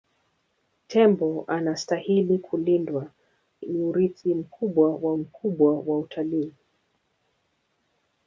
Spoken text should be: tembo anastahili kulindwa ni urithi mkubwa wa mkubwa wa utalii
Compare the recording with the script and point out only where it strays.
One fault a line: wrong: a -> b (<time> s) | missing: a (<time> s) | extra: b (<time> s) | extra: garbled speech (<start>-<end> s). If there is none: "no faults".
no faults